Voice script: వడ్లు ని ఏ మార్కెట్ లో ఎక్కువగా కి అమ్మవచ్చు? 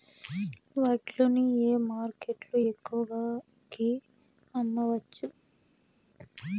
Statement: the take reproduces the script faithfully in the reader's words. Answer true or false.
true